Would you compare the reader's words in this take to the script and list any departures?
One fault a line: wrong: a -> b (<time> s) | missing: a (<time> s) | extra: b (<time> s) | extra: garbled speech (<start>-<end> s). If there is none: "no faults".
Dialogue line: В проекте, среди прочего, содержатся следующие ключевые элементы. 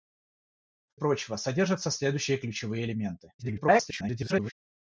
missing: проекте среди (1.0 s)
extra: garbled speech (3.4-4.5 s)